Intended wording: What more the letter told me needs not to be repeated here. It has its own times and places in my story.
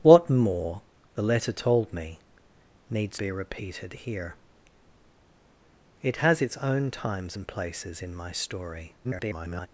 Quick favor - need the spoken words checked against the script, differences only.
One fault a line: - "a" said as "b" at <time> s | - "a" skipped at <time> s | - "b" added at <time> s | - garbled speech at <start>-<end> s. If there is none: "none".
- "not to" skipped at 3.2 s
- garbled speech at 9.0-9.7 s